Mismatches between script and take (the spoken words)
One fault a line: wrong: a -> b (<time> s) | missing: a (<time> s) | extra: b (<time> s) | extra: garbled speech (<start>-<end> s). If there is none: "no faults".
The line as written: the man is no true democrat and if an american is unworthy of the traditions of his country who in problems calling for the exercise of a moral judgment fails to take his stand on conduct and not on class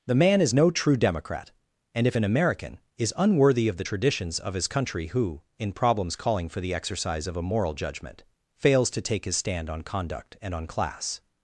missing: not (10.5 s)